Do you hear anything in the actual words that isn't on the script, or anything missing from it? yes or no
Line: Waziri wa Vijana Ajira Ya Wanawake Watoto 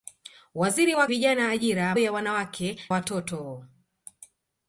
no